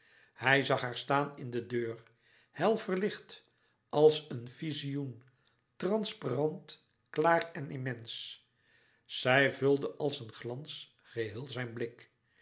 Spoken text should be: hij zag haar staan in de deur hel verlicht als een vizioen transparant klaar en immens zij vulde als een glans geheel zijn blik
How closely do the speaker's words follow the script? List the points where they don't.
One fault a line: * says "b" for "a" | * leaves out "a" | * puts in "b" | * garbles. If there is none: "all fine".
all fine